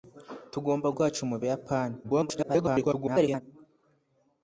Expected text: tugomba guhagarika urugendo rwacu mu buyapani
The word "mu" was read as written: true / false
true